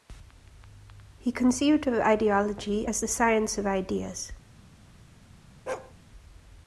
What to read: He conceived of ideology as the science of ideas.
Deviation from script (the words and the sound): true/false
true